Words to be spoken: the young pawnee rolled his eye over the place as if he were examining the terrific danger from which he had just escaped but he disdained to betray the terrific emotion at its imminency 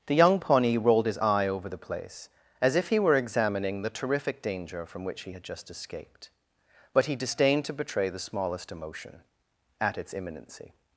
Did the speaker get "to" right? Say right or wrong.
right